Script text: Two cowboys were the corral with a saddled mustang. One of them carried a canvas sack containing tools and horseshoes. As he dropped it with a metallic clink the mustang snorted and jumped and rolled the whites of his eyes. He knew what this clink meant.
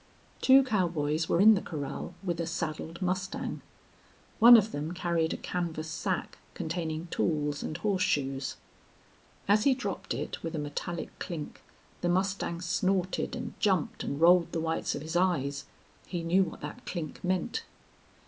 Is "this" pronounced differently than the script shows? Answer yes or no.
yes